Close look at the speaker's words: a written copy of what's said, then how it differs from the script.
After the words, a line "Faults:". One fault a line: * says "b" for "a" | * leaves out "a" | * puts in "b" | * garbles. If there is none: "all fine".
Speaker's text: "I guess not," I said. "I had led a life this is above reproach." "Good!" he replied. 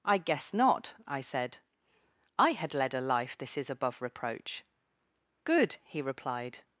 "I guess not," I said. "I had led a life this is above reproach." "Good!" he replied.
Faults:
all fine